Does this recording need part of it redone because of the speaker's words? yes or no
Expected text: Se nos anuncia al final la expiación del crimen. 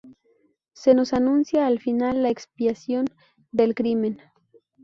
no